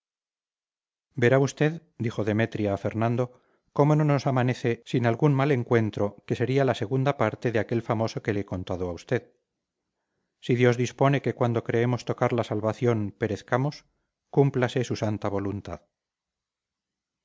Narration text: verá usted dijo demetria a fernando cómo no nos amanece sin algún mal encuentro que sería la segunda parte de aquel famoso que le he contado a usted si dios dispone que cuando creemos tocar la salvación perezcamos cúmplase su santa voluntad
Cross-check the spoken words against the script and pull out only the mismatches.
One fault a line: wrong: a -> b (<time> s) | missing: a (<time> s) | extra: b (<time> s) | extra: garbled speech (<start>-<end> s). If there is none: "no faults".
no faults